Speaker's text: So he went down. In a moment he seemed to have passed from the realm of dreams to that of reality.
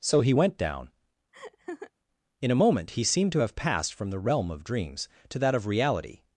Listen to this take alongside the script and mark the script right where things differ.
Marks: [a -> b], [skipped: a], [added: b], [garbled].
So he went down. In a moment he seemed to have passed from the realm of dreams to that of reality.